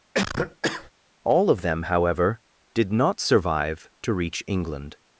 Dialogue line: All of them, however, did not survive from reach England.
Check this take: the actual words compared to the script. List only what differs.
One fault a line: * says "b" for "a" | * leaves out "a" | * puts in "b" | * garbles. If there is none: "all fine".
* says "to" for "from"